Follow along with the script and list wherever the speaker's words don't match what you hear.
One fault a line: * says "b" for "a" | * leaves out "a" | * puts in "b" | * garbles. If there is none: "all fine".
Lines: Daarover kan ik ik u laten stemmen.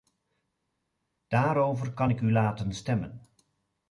* leaves out "ik"